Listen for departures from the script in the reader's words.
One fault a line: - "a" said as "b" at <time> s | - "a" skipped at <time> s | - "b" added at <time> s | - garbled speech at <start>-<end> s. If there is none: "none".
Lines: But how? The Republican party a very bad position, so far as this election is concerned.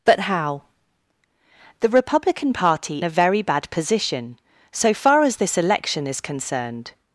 none